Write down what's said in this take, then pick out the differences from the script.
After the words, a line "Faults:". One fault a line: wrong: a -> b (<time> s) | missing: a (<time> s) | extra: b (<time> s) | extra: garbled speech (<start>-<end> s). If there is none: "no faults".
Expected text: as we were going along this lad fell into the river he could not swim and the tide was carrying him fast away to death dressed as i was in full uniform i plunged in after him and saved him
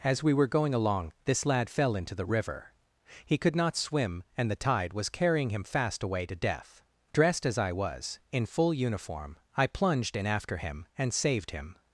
as we were going along this lad fell into the river he could not swim and the tide was carrying him fast away to death dressed as i was in full uniform i plunged in after him and saved him
Faults:
no faults